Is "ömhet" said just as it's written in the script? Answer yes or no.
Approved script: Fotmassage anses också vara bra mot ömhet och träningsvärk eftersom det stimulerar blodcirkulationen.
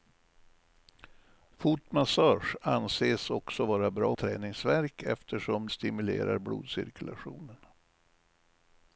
no